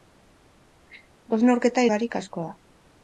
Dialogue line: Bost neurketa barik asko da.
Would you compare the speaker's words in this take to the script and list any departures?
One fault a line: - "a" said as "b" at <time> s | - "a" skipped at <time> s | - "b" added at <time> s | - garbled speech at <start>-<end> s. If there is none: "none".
none